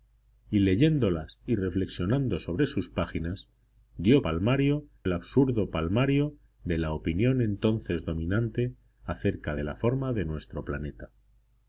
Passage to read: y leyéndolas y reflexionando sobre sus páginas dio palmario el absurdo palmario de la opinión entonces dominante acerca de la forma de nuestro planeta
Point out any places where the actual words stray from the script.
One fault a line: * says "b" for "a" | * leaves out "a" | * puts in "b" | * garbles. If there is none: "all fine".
all fine